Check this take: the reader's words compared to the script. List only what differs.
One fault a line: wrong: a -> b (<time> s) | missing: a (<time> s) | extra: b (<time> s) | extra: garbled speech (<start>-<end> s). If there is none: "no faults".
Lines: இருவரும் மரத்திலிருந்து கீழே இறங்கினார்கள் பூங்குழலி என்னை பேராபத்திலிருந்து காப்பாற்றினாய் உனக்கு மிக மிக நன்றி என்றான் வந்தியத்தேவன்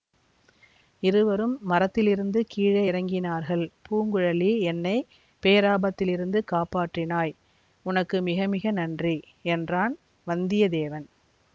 no faults